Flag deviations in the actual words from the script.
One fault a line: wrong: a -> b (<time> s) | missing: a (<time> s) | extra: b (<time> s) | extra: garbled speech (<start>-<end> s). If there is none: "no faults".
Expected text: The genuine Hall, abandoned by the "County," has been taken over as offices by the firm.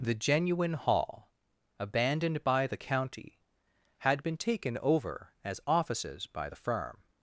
wrong: has -> had (4.0 s)